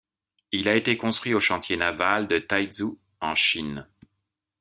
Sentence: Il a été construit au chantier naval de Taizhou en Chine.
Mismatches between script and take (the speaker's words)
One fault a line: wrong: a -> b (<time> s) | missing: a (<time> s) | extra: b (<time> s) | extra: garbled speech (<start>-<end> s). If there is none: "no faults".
no faults